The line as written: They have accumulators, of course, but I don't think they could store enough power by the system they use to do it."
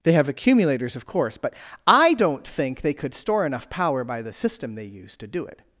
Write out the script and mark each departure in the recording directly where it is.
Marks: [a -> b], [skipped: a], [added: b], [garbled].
They have accumulators, of course, but I don't think they could store enough power by the system they use to do it."